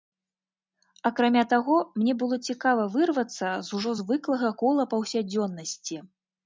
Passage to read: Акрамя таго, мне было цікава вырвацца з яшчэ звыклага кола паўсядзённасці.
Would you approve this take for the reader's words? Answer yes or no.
no